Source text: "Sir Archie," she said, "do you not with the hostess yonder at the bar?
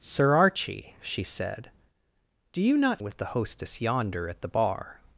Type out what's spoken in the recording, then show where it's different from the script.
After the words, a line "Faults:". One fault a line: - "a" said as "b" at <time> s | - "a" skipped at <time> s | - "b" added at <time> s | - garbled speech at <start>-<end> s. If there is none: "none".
"Sir Archie," she said, "do you not with the hostess yonder at the bar?
Faults:
none